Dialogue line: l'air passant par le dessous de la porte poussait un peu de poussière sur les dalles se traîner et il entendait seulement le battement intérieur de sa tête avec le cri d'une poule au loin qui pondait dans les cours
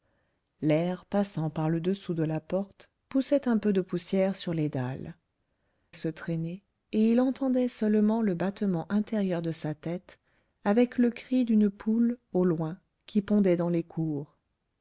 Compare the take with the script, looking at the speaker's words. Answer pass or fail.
pass